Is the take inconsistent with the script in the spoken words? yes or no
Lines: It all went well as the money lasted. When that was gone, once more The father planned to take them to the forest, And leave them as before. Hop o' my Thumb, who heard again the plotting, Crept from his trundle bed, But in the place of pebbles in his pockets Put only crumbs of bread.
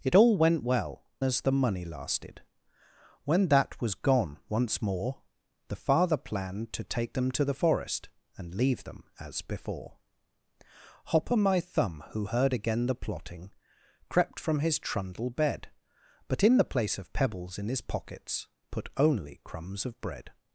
no